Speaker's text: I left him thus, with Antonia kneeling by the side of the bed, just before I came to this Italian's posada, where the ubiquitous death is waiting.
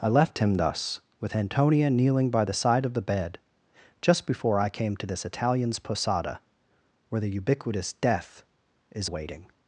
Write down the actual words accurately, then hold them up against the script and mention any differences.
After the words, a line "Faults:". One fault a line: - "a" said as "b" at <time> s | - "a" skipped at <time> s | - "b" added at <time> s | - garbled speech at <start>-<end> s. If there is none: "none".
I left him thus, with Antonia kneeling by the side of the bed, just before I came to this Italian's posada, where the ubiquitous death is waiting.
Faults:
none